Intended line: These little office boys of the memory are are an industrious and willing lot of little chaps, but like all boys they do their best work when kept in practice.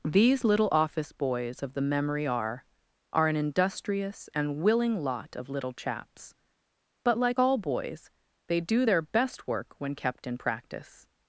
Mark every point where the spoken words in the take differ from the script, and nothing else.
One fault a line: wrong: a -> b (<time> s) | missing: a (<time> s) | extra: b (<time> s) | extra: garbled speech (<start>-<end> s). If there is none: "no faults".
no faults